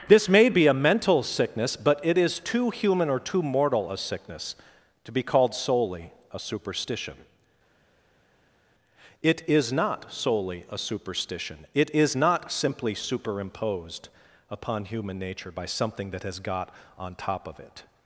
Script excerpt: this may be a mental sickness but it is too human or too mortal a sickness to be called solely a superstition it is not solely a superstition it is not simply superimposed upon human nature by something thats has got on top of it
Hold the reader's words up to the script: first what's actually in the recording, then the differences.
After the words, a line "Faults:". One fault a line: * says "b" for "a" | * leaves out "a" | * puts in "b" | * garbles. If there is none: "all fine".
this may be a mental sickness but it is too human or too mortal a sickness to be called solely a superstition it is not solely a superstition it is not simply superimposed upon human nature by something that has got on top of it
Faults:
* says "that" for "thats"